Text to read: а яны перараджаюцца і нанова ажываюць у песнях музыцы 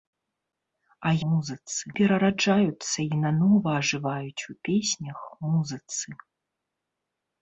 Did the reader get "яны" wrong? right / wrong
wrong